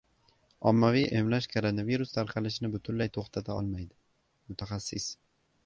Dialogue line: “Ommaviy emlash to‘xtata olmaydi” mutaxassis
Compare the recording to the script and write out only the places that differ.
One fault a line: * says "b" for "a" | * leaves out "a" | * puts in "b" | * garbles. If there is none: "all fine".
* puts in "koronavirus tarqalishini butunlay"